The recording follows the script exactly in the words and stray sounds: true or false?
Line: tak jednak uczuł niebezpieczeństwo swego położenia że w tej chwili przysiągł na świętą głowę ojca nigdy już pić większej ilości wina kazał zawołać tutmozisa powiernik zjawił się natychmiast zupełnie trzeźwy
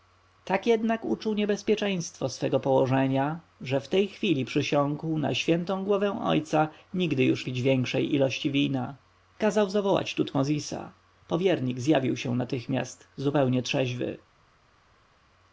true